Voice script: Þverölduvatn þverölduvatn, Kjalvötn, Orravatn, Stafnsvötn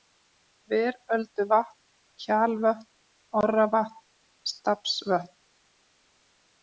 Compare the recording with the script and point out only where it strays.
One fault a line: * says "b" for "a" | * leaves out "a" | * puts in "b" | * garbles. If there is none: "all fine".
* leaves out "þverölduvatn"